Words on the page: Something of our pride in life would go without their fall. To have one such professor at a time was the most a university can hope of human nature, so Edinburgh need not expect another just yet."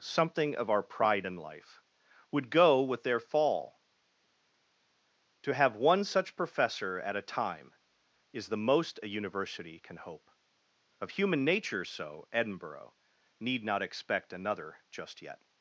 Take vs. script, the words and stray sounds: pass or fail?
fail